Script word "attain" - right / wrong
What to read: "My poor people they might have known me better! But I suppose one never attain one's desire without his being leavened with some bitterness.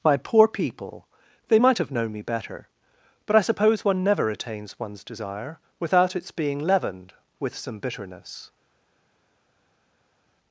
wrong